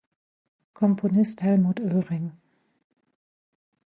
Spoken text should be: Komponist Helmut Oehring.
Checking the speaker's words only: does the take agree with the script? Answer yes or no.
yes